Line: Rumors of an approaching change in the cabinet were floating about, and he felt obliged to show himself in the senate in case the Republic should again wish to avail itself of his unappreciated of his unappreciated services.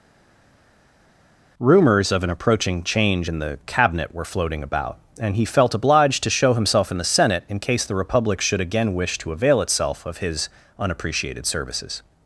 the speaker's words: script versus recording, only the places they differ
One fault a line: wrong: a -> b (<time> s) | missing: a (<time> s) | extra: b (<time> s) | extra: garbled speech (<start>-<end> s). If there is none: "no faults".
missing: of his unappreciated (11.5 s)